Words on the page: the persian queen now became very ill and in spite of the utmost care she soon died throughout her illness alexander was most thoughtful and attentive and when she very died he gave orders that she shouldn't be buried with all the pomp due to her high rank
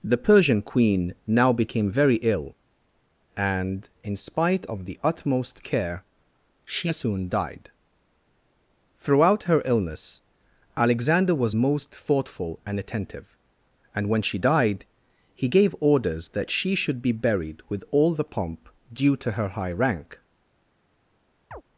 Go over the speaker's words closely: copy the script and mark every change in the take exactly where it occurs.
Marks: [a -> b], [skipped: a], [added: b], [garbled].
the persian queen now became very ill and in spite of the utmost care she soon died throughout her illness alexander was most thoughtful and attentive and when she [skipped: very] died he gave orders that she [shouldn't -> should] be buried with all the pomp due to her high rank